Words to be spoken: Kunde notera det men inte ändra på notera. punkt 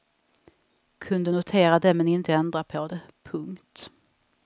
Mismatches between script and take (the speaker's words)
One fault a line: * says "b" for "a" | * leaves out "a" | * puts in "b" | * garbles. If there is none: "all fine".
* says "det" for "notera"